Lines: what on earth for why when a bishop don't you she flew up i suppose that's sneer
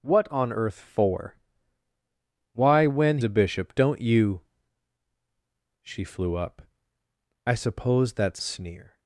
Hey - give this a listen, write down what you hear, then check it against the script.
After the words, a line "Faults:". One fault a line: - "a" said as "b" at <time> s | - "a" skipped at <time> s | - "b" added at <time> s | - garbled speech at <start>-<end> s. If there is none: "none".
what on earth for why when a bishop don't you she flew up i suppose that's sneer
Faults:
none